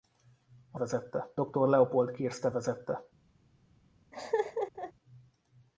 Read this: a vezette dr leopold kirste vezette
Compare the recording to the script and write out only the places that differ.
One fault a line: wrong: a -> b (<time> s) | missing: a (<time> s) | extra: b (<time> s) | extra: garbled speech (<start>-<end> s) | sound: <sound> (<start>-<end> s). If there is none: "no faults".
sound: laugh (4.1-4.9 s)